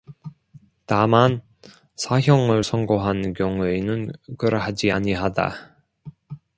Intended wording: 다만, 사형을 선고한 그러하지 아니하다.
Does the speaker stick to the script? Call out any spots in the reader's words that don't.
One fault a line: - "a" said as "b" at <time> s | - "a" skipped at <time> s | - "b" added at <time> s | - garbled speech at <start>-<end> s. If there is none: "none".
- "경우에는" added at 3.3 s